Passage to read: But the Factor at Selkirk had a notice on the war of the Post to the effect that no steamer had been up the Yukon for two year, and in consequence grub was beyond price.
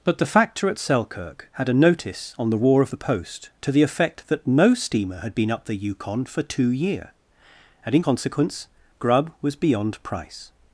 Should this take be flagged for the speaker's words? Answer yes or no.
no